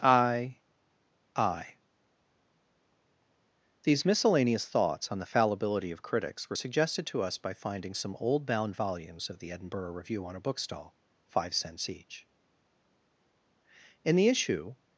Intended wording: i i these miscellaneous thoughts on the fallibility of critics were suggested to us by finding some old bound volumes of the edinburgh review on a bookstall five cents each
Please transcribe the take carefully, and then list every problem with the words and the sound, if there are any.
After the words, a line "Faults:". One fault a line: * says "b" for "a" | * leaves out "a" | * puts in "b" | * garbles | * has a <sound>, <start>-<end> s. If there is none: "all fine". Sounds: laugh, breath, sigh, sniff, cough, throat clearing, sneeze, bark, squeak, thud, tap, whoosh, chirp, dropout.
i i these miscellaneous thoughts on the fallibility of critics were suggested to us by finding some old bound volumes of the edinburgh review on a bookstall five cents each in the issue
Faults:
* puts in "in the issue"